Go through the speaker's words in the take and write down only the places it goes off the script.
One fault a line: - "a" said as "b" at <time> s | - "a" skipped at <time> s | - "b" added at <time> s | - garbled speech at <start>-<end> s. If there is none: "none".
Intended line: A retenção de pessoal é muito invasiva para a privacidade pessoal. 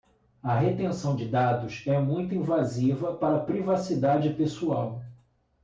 - "pessoal" said as "dados" at 1.3 s